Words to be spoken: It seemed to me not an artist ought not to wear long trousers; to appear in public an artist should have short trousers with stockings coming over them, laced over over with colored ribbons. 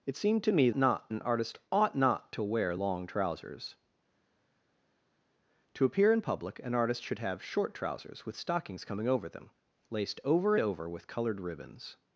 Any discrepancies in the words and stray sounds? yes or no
no